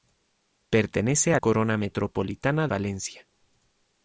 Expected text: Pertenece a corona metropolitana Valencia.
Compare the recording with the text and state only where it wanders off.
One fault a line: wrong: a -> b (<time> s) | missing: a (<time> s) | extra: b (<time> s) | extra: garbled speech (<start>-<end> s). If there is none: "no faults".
no faults